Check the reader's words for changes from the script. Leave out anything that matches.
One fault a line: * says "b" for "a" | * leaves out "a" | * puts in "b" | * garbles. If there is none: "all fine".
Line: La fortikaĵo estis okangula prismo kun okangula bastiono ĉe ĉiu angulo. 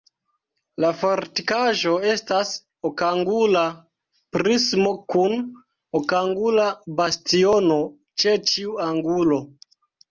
* says "estas" for "estis"